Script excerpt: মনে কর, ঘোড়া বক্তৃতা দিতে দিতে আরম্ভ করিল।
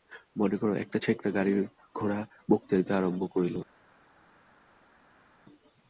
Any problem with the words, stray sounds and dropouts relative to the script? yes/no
yes